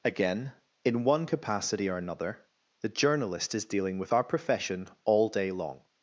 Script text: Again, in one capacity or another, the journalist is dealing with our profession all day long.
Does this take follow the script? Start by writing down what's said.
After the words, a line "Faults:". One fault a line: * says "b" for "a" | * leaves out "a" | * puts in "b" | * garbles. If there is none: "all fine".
Again, in one capacity or another, the journalist is dealing with our profession all day long.
Faults:
all fine